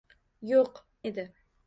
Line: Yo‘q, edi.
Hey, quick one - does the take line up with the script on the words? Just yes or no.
yes